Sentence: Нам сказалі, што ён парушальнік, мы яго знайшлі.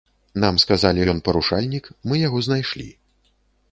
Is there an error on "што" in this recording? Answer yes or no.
yes